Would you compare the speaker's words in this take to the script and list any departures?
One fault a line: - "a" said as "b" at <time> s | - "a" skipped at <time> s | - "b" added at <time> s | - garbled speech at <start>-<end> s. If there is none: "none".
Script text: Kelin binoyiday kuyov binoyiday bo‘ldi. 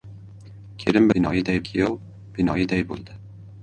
none